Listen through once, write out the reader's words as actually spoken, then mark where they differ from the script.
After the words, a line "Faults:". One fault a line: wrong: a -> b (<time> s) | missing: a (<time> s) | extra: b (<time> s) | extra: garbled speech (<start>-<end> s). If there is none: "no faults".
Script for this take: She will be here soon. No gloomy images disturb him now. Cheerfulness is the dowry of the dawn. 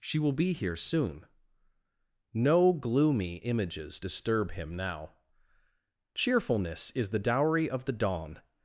She will be here soon. No gloomy images disturb him now. Cheerfulness is the dowry of the dawn.
Faults:
no faults